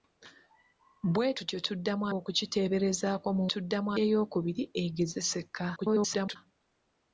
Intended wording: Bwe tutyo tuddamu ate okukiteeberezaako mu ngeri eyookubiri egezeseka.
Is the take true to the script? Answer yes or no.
no